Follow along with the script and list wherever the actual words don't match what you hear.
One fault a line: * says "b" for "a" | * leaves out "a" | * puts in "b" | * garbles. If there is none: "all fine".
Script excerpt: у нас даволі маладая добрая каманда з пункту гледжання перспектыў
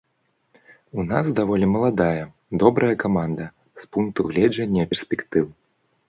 all fine